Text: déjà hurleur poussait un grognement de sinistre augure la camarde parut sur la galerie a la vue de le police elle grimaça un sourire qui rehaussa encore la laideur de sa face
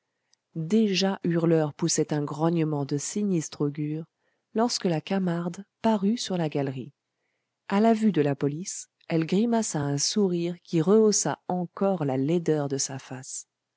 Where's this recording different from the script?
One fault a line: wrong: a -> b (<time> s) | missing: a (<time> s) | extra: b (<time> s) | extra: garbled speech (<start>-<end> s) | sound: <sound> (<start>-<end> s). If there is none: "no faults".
extra: lorsque (4.5 s)
wrong: le -> la (8.2 s)